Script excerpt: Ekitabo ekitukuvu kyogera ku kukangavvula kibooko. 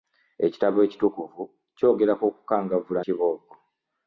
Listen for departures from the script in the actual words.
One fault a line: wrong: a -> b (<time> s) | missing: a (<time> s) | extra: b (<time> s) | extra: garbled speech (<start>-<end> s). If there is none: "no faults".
no faults